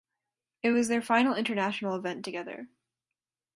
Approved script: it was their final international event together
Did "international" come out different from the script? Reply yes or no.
no